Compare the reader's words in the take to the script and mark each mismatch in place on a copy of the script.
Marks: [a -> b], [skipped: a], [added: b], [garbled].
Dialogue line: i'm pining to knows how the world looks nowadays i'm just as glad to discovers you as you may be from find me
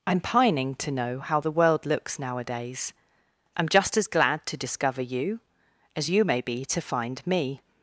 i'm pining to [knows -> know] how the world looks nowadays i'm just as glad to [discovers -> discover] you as you may be [from -> to] find me